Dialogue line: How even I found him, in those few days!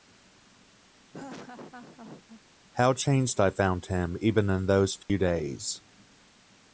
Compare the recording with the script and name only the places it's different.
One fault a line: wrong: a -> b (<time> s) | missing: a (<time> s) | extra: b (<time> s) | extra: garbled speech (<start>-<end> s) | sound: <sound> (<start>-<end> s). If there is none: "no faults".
sound: laugh (1.1-2.4 s)
wrong: even -> changed (2.9 s)
extra: even (4.2 s)
sound: dropout (5.0-5.1 s)